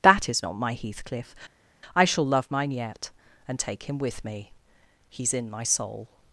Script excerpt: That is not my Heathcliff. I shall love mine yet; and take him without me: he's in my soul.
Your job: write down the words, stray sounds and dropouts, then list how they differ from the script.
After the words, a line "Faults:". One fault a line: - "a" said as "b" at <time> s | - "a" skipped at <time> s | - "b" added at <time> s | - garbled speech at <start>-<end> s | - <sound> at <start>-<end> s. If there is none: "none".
That is not my Heathcliff. I shall love mine yet; and take him with me: he's in my soul.
Faults:
- "without" said as "with" at 4.0 s